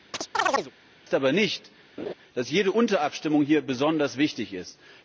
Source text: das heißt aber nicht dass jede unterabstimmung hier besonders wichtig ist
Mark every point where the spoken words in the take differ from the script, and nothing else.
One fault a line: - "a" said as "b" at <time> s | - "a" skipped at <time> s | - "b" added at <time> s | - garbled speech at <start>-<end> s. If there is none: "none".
none